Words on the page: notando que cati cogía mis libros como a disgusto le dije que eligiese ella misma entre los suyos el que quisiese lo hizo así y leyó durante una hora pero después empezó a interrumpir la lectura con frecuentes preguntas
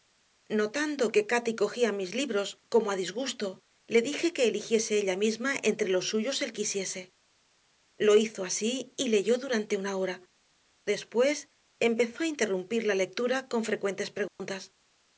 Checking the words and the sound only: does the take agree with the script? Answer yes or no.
no